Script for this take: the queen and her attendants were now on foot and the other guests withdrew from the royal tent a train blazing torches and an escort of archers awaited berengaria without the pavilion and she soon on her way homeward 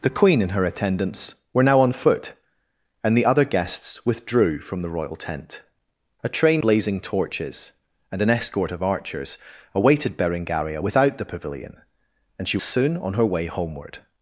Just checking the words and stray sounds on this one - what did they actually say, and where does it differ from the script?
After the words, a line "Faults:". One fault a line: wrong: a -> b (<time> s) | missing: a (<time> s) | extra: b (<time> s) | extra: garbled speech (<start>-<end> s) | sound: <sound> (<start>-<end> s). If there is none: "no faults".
the queen and her attendants were now on foot and the other guests withdrew from the royal tent a train blazing torches and an escort of archers awaited berengaria without the pavilion and she soon on her way homeward
Faults:
no faults